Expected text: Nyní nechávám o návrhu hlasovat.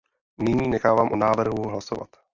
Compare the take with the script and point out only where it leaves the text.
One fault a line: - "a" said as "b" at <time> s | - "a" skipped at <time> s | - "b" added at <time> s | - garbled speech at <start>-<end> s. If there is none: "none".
none